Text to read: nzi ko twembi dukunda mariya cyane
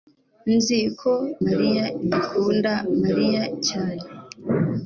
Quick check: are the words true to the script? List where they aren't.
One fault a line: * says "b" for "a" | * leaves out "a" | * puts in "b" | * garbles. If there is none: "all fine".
* says "mariya" for "twembi"